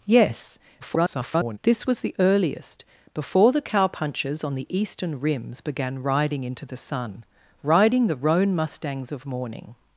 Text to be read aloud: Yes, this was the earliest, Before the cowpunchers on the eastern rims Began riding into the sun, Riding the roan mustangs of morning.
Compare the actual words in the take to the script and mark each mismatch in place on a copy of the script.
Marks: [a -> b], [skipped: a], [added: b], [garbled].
Yes, [garbled] this was the earliest, Before the cowpunchers on the eastern rims Began riding into the sun, Riding the roan mustangs of morning.